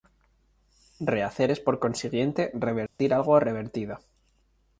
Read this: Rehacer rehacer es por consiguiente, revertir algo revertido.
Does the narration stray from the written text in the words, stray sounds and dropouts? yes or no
yes